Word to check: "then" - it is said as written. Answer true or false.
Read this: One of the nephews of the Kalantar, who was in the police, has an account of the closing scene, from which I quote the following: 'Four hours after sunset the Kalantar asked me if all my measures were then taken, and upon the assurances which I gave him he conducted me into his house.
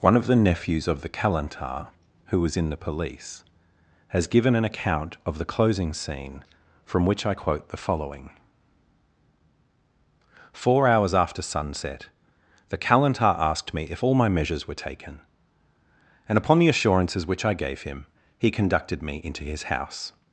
false